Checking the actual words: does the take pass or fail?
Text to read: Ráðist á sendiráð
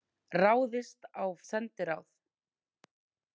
pass